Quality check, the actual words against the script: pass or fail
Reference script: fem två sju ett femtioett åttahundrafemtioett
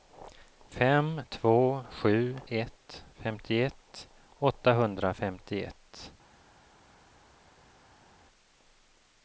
pass